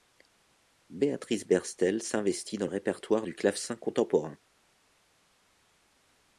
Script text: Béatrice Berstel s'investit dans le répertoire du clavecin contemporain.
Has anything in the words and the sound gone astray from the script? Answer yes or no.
yes